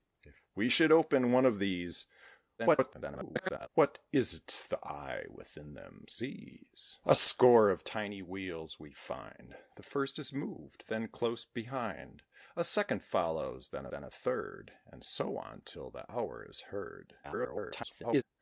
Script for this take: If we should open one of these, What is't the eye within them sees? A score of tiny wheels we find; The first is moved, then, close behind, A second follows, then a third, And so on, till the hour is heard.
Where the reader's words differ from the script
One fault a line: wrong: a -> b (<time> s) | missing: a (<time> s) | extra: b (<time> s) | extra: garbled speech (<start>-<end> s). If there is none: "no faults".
extra: garbled speech (2.6-3.7 s)
extra: then (13.9 s)
extra: garbled speech (17.2-18.2 s)